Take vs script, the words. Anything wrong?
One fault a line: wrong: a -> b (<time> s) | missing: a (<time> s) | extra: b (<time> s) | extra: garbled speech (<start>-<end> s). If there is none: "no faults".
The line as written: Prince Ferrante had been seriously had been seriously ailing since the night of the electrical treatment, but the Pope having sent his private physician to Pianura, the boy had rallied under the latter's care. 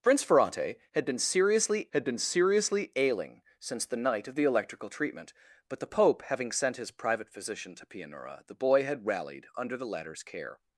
no faults